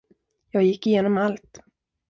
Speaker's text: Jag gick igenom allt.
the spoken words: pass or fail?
pass